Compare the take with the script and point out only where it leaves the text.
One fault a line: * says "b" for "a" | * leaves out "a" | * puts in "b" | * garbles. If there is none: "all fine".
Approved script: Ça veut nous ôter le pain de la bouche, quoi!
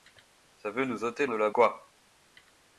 * leaves out "le pain"
* leaves out "bouche"